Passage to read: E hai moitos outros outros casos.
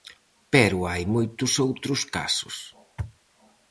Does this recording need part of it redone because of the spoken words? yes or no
yes